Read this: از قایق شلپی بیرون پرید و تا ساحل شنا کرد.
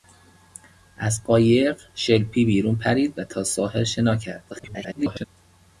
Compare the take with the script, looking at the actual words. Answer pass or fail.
fail